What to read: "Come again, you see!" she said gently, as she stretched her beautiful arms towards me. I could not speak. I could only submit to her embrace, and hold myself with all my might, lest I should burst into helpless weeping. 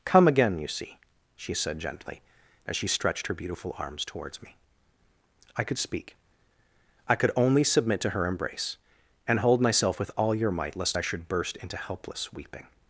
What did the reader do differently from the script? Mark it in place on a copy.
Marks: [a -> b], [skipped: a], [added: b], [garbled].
"Come again, you see!" she said gently, as she stretched her beautiful arms towards me. I could [skipped: not] speak. I could only submit to her embrace, and hold myself with all [my -> your] might, lest I should burst into helpless weeping.